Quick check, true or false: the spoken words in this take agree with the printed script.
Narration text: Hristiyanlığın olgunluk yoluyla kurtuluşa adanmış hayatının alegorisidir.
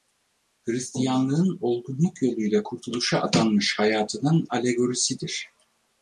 true